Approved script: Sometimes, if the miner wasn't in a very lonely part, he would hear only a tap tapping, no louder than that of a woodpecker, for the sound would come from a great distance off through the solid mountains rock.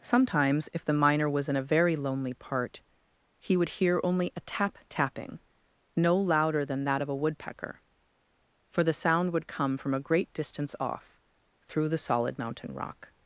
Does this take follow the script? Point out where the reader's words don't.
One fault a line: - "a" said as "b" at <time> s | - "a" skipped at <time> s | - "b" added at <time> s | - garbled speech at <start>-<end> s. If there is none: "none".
- "wasn't" said as "was" at 1.3 s
- "mountains" said as "mountain" at 12.4 s